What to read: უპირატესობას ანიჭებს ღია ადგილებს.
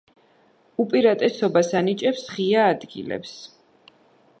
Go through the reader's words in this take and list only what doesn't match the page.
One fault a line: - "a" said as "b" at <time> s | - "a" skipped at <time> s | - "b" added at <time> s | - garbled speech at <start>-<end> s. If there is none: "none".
none